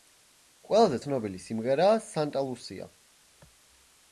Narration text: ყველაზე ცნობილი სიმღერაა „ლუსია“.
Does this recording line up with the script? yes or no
no